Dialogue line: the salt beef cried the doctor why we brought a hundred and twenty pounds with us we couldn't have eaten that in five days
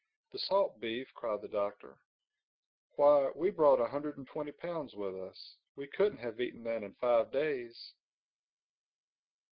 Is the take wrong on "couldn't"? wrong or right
right